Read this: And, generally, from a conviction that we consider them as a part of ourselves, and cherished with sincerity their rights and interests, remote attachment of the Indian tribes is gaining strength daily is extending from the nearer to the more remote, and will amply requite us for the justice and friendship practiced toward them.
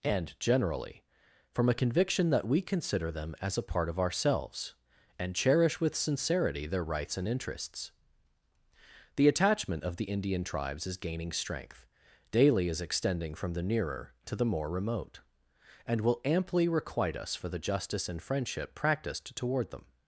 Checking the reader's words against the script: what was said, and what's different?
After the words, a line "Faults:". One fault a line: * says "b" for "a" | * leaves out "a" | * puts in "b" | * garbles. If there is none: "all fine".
And, generally, from a conviction that we consider them as a part of ourselves, and cherish with sincerity their rights and interests, the attachment of the Indian tribes is gaining strength daily is extending from the nearer to the more remote, and will amply requite us for the justice and friendship practiced toward them.
Faults:
* says "cherish" for "cherished"
* says "the" for "remote"